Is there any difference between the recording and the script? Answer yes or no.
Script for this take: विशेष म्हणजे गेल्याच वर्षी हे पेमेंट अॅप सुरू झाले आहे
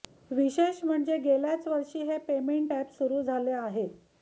no